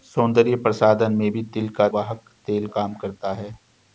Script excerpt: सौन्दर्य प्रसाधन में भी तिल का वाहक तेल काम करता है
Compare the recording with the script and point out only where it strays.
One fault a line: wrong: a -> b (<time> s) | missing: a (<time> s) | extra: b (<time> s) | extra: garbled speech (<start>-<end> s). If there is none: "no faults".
no faults